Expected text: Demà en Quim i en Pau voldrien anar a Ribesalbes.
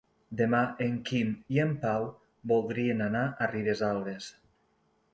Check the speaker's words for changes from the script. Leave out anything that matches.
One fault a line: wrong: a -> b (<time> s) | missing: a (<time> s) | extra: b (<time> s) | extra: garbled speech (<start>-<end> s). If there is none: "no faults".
no faults